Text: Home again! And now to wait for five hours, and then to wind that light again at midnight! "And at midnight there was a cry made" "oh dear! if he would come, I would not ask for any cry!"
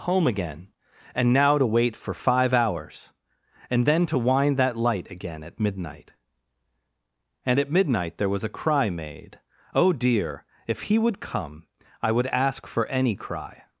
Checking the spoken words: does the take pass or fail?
fail